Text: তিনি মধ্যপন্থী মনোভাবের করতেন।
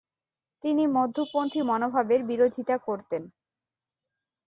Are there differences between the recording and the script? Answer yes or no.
yes